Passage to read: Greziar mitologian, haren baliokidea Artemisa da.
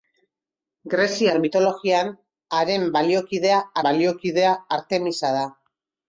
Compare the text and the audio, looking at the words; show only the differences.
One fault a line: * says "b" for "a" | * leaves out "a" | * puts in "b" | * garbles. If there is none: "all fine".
* puts in "baliokidea"